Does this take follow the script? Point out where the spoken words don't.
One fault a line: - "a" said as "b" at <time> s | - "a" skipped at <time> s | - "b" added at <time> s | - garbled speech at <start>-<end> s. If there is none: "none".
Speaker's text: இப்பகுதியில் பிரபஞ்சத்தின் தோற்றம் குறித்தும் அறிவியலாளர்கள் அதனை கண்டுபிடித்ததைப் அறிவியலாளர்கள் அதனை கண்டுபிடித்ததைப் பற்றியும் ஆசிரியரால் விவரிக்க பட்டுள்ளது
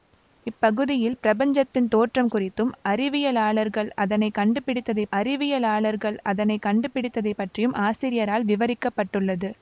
none